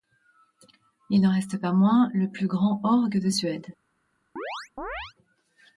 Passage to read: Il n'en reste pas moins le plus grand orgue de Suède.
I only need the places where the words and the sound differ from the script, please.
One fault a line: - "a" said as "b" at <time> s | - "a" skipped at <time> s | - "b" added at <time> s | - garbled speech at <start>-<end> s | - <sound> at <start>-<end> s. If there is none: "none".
- chirp at 4.4-5.1 s